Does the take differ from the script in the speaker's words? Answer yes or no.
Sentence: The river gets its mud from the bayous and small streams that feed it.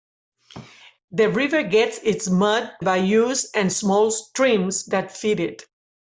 yes